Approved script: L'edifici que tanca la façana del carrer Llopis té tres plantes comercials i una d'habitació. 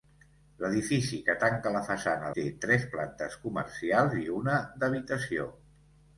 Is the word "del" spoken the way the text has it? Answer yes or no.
no